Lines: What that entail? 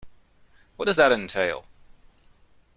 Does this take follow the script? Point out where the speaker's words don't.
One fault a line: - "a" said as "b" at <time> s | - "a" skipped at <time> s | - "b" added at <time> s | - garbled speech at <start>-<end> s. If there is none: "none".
- "does" added at 0.9 s